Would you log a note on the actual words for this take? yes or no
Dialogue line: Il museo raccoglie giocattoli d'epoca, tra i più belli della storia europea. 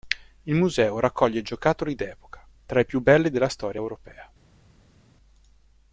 no